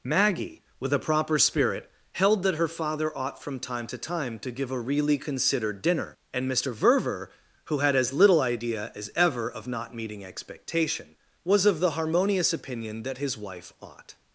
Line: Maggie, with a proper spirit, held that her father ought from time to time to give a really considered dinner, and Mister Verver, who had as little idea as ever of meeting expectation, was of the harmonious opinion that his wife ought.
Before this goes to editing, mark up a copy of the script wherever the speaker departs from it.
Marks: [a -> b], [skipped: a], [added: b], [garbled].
Maggie, with a proper spirit, held that her father ought from time to time to give a really considered dinner, and Mister Verver, who had as little idea as ever of [added: not] meeting expectation, was of the harmonious opinion that his wife ought.